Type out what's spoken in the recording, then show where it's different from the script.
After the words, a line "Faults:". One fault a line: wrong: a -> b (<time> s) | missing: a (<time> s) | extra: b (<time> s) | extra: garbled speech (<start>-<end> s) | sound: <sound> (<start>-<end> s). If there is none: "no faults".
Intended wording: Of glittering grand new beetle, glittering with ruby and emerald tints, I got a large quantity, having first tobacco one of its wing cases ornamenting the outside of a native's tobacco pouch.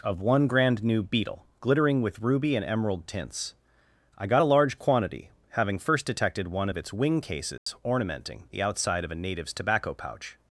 Of one grand new beetle, glittering with ruby and emerald tints, I got a large quantity, having first detected one of its wing cases ornamenting the outside of a native's tobacco pouch.
Faults:
wrong: glittering -> one (0.2 s)
wrong: tobacco -> detected (6.0 s)
sound: dropout (7.6-7.7 s)